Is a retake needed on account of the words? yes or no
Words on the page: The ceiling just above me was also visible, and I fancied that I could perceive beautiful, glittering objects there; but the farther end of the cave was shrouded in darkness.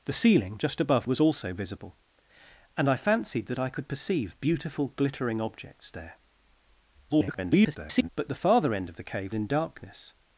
yes